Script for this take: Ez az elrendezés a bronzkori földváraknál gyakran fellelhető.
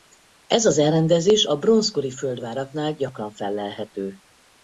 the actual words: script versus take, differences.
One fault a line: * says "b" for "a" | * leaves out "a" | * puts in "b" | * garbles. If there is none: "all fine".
all fine